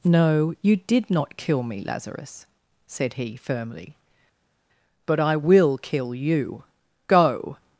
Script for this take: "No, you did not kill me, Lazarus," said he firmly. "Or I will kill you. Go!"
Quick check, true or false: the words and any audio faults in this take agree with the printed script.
false